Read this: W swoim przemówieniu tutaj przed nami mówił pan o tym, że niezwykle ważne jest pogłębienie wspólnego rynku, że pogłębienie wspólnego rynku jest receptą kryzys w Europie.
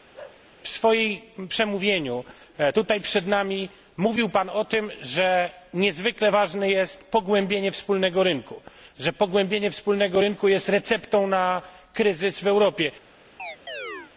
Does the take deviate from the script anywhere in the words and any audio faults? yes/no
yes